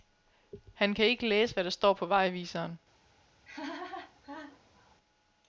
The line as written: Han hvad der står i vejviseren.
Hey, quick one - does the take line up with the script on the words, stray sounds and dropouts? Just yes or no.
no